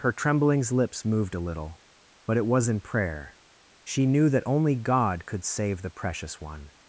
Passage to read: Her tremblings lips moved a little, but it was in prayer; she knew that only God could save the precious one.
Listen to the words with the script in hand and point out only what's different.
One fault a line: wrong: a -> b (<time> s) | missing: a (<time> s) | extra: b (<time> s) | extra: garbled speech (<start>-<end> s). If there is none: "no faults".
no faults